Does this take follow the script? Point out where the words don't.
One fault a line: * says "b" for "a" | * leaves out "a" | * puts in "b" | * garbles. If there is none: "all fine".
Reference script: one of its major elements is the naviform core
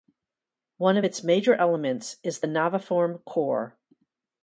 all fine